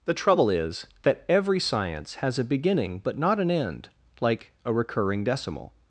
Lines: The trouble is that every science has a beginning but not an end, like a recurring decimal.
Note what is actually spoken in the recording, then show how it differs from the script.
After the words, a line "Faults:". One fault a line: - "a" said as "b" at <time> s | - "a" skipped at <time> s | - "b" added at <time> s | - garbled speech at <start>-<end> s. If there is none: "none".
The trouble is that every science has a beginning but not an end, like a recurring decimal.
Faults:
none